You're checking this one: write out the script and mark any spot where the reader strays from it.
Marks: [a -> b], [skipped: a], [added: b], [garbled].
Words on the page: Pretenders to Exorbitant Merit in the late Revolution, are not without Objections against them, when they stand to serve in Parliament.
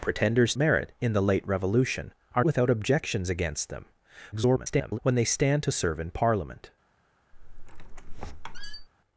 Pretenders [skipped: to Exorbitant] Merit in the late Revolution, are [skipped: not] without Objections against them, [garbled] when they stand to serve in Parliament.